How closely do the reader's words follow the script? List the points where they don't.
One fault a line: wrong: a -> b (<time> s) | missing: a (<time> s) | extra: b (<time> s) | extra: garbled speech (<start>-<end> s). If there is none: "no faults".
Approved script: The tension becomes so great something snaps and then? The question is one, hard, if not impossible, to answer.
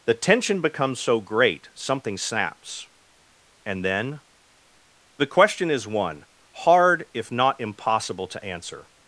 no faults